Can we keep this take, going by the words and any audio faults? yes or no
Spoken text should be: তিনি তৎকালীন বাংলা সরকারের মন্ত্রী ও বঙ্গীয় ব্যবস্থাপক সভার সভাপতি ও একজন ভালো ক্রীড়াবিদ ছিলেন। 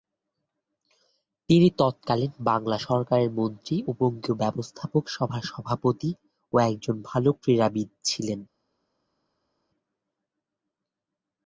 yes